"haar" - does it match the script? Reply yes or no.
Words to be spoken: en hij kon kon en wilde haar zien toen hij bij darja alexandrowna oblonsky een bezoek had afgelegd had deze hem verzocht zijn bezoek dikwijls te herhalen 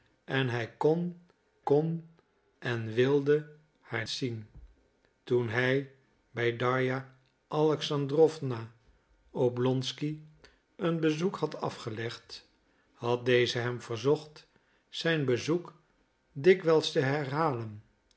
yes